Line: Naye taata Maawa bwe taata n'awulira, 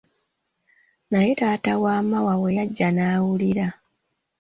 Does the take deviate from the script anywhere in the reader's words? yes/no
yes